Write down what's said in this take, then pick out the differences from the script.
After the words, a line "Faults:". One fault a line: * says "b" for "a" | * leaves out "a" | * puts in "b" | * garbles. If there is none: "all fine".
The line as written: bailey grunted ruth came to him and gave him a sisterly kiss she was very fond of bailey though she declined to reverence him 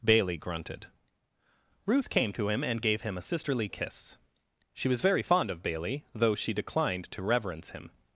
bailey grunted ruth came to him and gave him a sisterly kiss she was very fond of bailey though she declined to reverence him
Faults:
all fine